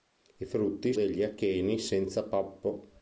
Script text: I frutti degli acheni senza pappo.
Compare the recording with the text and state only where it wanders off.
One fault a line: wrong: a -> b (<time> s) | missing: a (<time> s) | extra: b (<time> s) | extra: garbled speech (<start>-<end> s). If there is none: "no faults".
no faults